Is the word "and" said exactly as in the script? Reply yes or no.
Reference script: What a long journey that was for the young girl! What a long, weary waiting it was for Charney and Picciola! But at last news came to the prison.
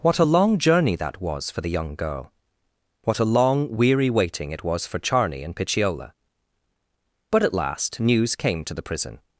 yes